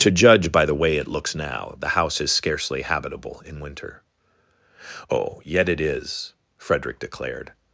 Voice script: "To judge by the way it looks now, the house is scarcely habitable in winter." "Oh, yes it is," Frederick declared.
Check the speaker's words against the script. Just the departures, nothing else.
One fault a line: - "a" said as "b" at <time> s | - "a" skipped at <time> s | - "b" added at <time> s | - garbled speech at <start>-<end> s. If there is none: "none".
- "yes" said as "yet" at 5.4 s